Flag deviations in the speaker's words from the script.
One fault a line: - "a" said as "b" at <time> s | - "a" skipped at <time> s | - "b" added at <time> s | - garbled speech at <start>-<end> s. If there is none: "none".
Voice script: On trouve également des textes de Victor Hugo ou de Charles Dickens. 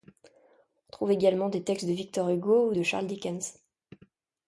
none